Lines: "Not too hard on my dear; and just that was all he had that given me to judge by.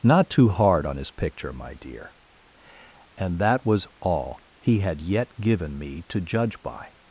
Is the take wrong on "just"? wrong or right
wrong